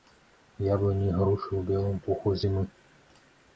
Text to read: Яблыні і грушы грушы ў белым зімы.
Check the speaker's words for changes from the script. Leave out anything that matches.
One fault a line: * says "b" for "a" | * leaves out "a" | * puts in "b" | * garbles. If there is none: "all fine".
* leaves out "грушы"
* puts in "пуху"